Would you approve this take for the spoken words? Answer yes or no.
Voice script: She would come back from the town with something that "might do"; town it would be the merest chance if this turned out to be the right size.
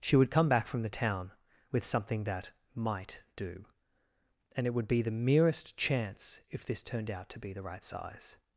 no